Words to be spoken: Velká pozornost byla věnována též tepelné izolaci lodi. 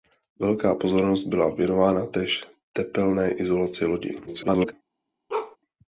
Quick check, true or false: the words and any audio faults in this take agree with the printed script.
false